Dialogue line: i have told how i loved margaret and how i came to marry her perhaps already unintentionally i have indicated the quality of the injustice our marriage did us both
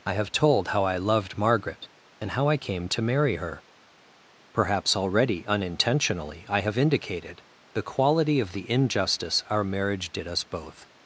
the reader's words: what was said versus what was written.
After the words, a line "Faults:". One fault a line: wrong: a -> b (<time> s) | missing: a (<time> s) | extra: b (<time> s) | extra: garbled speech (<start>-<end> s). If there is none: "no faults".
i have told how i loved margaret and how i came to marry her perhaps already unintentionally i have indicated the quality of the injustice our marriage did us both
Faults:
no faults